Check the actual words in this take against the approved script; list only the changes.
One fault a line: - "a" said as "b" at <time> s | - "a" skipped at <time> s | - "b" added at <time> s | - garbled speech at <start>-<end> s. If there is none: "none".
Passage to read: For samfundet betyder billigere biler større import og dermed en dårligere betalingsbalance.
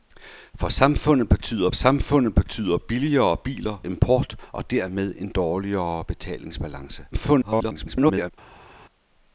- "samfundet betyder" added at 1.7 s
- "større" skipped at 3.8 s
- garbled speech at 7.1-8.3 s